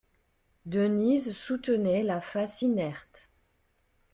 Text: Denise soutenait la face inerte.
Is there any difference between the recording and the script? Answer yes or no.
no